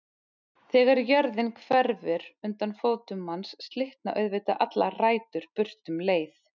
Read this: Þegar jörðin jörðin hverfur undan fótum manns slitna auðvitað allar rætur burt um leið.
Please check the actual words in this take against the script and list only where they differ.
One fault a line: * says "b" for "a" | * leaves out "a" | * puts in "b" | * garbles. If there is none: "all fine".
* leaves out "jörðin"